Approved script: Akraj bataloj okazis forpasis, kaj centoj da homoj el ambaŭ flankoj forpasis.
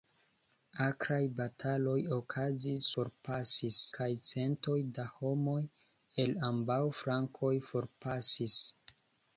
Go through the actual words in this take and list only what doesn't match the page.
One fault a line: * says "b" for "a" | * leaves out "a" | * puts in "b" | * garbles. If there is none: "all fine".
all fine